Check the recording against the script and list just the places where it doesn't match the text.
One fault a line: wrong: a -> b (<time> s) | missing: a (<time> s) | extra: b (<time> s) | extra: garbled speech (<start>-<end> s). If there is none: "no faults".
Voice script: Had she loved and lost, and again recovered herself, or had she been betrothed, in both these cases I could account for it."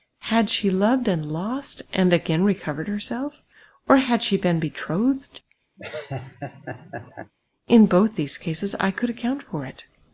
no faults